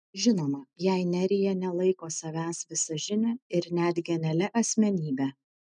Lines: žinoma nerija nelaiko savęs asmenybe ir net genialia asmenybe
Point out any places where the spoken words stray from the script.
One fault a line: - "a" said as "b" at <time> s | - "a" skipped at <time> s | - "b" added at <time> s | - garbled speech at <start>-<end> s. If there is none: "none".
- "jei" added at 0.8 s
- "asmenybe" said as "visažine" at 2.7 s